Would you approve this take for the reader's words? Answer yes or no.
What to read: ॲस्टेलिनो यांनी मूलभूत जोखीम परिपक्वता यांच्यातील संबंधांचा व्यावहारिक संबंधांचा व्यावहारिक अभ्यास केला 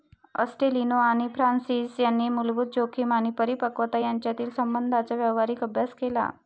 no